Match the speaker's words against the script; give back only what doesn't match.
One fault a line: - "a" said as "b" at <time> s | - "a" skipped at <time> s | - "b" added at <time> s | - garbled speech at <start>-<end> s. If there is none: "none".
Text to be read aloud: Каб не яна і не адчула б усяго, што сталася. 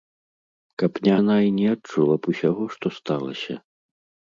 none